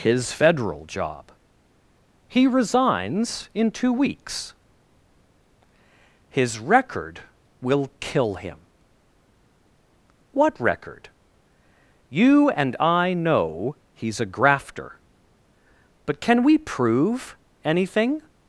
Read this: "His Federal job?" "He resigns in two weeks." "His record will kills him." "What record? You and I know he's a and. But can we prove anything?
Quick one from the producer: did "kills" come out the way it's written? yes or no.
no